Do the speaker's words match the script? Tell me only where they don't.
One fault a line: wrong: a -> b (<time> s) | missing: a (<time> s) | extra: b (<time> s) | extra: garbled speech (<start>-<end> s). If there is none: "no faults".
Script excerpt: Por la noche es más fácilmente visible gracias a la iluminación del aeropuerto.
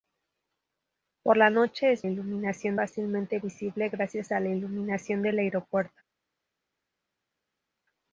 wrong: más -> iluminación (2.0 s)